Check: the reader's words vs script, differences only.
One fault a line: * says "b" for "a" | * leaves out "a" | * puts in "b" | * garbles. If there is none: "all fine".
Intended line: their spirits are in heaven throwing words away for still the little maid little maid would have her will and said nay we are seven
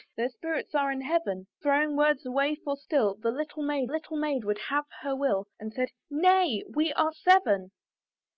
all fine